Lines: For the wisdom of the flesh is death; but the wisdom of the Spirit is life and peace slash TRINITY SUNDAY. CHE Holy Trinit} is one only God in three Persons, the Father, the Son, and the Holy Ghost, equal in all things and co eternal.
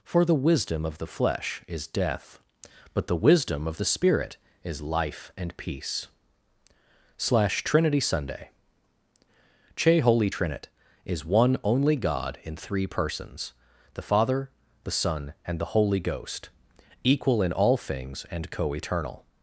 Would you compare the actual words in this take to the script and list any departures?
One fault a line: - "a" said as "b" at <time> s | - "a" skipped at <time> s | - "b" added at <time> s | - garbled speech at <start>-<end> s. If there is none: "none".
none